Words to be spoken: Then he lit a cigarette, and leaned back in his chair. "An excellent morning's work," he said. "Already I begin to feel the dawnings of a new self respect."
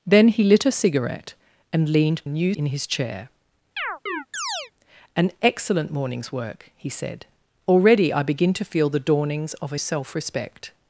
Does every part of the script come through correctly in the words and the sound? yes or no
no